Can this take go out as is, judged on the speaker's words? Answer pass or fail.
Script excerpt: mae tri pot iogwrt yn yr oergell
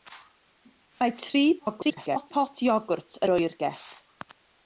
fail